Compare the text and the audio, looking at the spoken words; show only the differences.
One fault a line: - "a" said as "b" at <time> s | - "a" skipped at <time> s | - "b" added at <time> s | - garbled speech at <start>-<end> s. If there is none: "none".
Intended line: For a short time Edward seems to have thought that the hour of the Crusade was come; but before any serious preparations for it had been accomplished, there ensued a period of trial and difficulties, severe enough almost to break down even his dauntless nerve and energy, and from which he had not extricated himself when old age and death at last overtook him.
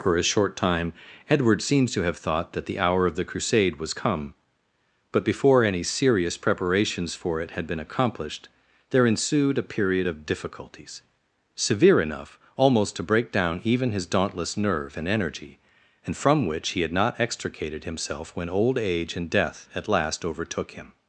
- "trial and" skipped at 10.3 s